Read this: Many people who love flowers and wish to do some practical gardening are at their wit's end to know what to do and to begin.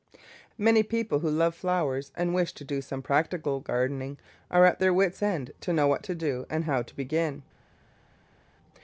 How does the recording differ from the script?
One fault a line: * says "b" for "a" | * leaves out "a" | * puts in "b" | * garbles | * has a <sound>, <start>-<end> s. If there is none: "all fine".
* puts in "how"